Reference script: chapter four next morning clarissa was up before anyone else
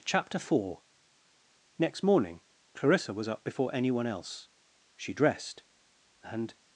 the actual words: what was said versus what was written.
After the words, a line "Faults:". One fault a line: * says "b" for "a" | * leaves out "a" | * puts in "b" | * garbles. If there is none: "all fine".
chapter four next morning clarissa was up before anyone else she dressed and
Faults:
* puts in "she dressed and"